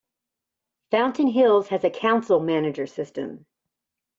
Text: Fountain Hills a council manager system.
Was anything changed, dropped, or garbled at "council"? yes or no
no